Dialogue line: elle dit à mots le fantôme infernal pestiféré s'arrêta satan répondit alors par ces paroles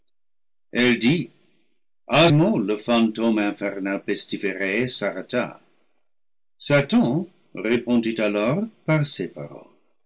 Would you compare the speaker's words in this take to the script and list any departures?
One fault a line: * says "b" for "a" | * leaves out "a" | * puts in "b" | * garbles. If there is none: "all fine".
all fine